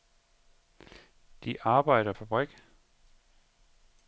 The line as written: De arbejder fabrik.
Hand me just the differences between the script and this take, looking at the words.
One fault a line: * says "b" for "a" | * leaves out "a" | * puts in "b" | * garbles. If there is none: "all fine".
all fine